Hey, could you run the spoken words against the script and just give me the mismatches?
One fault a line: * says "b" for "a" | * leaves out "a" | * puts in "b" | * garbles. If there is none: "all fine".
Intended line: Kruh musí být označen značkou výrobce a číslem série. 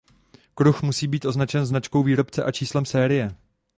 all fine